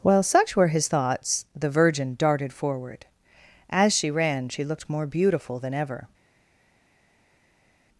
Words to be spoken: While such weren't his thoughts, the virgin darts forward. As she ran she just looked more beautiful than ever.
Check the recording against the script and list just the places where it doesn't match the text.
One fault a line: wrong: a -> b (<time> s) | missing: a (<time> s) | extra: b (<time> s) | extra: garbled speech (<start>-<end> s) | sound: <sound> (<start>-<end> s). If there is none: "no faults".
wrong: weren't -> were (0.6 s)
wrong: darts -> darted (2.2 s)
missing: just (4.6 s)